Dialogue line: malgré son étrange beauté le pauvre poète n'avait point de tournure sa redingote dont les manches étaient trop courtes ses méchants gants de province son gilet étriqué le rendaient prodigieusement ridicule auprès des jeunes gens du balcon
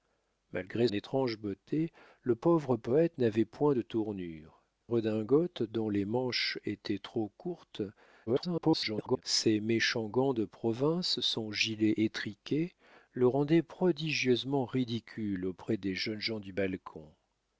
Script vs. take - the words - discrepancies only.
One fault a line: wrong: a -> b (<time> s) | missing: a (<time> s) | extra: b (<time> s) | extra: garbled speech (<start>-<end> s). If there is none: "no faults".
missing: son (0.9 s)
missing: sa (4.6 s)
extra: garbled speech (8.3-9.2 s)